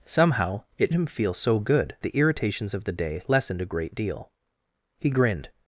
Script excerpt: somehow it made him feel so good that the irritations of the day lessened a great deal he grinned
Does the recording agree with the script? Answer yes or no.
no